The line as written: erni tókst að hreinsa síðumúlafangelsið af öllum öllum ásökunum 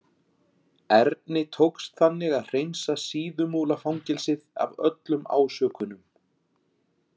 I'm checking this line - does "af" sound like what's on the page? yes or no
yes